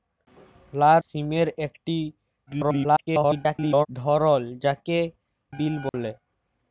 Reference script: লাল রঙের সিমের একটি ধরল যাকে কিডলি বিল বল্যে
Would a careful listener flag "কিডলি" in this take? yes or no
yes